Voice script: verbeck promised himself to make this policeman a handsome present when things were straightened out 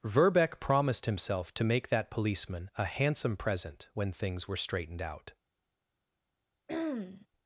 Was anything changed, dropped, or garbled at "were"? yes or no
no